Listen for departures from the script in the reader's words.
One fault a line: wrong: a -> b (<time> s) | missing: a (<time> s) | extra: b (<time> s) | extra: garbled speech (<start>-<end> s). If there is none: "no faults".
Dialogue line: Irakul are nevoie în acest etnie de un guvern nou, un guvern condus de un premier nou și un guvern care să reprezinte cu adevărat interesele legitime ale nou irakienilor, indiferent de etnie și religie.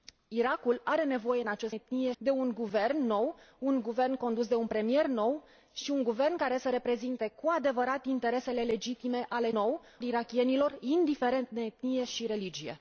no faults